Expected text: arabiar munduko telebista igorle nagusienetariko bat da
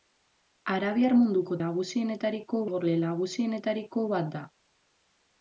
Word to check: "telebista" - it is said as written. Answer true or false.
false